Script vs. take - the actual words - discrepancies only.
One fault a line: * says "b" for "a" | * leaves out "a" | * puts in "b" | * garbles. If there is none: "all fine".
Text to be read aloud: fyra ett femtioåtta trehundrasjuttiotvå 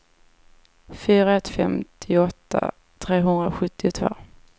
all fine